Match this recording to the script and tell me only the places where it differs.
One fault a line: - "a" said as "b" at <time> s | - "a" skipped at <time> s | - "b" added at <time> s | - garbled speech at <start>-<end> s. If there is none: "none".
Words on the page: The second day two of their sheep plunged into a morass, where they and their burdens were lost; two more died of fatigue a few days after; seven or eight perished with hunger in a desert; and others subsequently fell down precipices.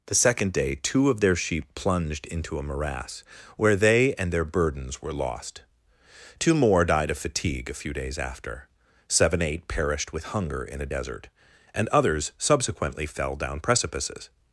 - "or" skipped at 9.4 s